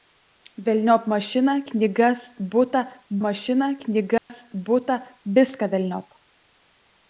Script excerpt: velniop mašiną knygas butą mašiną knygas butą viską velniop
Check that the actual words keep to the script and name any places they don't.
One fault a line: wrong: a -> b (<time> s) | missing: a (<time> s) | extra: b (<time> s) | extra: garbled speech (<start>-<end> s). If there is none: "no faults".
no faults